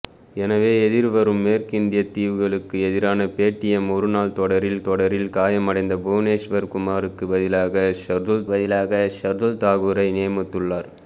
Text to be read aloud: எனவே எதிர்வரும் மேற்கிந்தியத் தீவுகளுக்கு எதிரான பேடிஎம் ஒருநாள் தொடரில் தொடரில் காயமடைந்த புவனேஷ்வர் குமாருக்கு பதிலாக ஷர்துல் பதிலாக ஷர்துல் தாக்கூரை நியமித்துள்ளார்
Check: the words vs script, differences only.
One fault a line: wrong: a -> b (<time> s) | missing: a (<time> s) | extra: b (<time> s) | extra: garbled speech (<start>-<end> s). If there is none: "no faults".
no faults